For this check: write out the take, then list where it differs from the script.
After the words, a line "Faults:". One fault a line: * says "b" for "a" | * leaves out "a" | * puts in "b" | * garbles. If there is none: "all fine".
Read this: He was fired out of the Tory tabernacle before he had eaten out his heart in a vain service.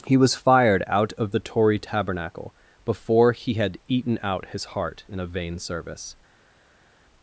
He was fired out of the Tory tabernacle before he had eaten out his heart in a vain service.
Faults:
all fine